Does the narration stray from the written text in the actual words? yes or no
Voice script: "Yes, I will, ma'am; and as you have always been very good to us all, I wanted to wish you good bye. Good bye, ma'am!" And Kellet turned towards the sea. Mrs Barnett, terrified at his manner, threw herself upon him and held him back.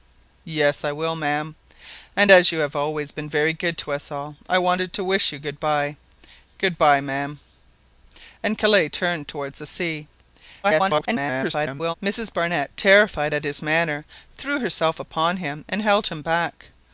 yes